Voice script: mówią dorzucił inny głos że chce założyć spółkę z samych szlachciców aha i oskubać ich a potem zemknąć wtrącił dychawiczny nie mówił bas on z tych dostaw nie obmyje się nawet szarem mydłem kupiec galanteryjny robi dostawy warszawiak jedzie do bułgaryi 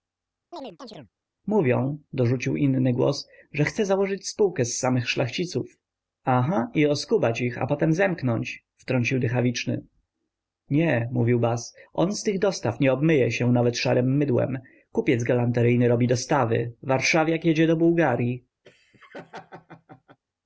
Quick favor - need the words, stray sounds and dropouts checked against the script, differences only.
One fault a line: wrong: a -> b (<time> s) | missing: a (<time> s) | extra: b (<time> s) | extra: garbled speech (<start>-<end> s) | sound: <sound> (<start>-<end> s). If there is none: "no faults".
sound: chirp (0.5-1.1 s)
sound: laugh (18.6-20.2 s)